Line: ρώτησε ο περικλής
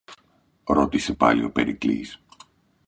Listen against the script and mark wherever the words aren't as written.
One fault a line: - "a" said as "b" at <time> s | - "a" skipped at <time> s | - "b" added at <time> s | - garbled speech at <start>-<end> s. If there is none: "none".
- "πάλι" added at 1.1 s